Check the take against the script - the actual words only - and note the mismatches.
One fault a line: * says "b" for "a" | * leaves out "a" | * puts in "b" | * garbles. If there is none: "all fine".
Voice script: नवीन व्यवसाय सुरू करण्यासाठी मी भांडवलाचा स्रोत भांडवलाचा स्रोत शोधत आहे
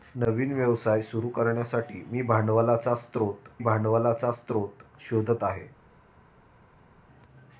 all fine